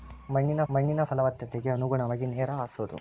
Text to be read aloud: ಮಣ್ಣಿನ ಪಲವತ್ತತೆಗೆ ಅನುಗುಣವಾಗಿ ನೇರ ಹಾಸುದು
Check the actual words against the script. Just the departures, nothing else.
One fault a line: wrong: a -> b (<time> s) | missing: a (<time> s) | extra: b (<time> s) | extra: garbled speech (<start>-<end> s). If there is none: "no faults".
extra: ಮಣ್ಣಿನ (0.7 s)